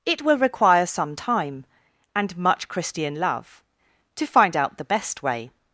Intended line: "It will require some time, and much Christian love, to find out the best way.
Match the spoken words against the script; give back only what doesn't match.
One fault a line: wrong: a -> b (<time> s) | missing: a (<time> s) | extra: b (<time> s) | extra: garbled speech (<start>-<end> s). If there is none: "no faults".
no faults